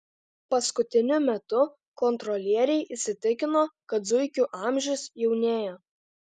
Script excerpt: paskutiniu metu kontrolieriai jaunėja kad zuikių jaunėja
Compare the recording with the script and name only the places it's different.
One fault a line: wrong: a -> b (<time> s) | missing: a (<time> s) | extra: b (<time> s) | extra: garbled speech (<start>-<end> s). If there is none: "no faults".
wrong: jaunėja -> įsitikino (3.0 s)
extra: amžius (4.6 s)